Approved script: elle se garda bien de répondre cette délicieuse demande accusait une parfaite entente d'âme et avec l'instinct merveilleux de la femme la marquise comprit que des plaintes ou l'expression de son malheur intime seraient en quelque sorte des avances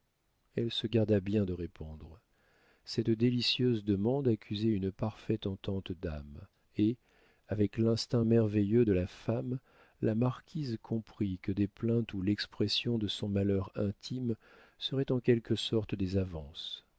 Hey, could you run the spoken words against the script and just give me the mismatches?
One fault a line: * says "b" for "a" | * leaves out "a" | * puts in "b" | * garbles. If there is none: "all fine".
all fine